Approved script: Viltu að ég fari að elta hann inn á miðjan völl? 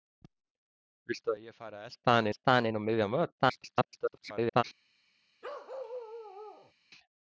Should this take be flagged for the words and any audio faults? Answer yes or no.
yes